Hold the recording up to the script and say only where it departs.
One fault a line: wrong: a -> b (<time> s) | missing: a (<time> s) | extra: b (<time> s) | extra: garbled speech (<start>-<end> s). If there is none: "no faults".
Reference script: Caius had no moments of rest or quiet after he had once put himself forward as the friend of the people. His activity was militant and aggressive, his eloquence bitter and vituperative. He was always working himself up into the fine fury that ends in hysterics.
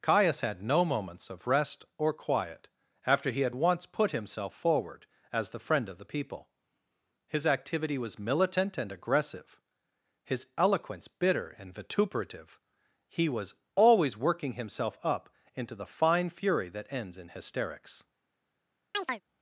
no faults